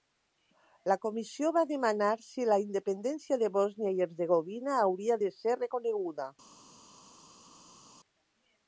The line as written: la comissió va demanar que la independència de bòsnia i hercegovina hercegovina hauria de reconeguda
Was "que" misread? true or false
true